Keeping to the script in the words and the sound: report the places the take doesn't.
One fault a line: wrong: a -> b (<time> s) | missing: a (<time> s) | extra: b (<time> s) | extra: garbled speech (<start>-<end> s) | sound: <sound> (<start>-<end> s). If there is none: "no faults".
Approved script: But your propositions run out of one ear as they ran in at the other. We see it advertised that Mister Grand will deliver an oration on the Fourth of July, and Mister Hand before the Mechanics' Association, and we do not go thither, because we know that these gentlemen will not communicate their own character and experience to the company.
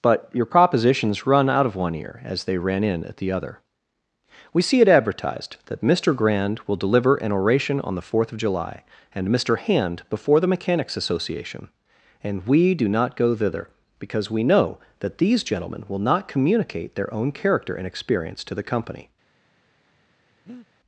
sound: breath (20.5-20.7 s)